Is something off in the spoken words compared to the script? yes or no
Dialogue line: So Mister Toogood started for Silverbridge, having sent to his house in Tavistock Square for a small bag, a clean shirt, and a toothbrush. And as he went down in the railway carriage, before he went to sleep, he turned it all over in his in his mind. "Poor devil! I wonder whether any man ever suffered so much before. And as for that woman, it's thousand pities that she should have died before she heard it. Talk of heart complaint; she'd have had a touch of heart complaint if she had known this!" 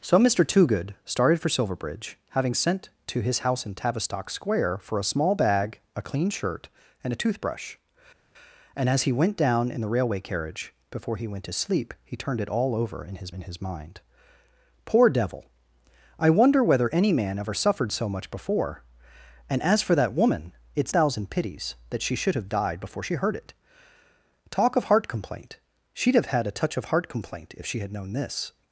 no